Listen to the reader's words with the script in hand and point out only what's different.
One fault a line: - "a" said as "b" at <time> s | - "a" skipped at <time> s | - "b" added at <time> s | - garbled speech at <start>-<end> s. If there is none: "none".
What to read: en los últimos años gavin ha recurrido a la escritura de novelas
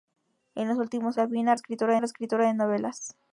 - "años" skipped at 1.2 s
- "recurrido" said as "escritura" at 1.5 s